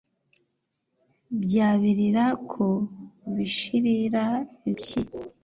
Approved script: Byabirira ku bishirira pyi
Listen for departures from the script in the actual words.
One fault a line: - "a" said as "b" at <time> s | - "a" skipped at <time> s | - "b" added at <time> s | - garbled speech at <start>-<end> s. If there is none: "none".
none